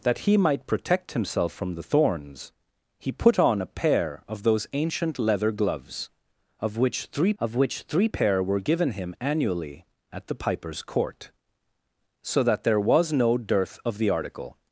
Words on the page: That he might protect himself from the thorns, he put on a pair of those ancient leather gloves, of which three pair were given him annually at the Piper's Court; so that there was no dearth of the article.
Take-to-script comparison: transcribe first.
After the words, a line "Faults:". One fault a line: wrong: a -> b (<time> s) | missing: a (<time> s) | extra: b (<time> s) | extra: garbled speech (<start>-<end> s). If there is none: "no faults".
That he might protect himself from the thorns, he put on a pair of those ancient leather gloves, of which three of which three pair were given him annually at the Piper's Court; so that there was no dearth of the article.
Faults:
extra: of which three (7.4 s)